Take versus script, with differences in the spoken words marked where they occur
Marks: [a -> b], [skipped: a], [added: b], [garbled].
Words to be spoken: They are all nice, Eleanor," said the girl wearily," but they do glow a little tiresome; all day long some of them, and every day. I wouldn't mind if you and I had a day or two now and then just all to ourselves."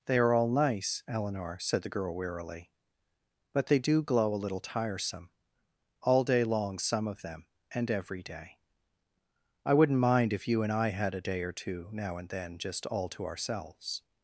They are all nice, Eleanor," said the girl wearily," but they do glow a little tiresome; all day long some of them, and every day. I wouldn't mind if you and I had a day or two now and then just all to ourselves."